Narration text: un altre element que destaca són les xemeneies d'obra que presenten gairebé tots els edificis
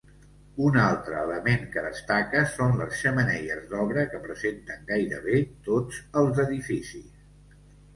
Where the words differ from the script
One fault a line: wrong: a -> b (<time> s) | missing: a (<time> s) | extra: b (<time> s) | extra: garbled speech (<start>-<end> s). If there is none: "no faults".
no faults